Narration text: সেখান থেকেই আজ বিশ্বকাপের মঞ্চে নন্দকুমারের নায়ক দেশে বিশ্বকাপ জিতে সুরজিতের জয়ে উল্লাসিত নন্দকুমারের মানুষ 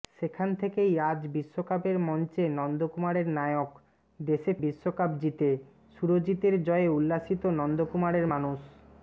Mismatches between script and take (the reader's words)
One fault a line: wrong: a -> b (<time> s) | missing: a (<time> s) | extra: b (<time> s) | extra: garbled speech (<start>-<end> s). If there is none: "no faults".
no faults